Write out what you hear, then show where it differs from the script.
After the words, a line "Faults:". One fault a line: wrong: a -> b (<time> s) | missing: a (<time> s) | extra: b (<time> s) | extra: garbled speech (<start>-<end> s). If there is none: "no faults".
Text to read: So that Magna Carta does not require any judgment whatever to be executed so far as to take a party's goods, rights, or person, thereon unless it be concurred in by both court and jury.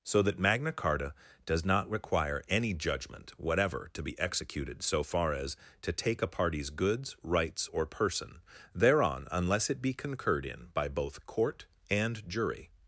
So that Magna Carta does not require any judgment whatever to be executed so far as to take a party's goods, rights, or person, thereon unless it be concurred in by both court and jury.
Faults:
no faults